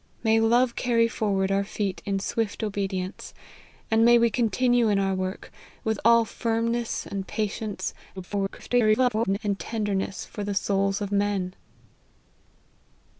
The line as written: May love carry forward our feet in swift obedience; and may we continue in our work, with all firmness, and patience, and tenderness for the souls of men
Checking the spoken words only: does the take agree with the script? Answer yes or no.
no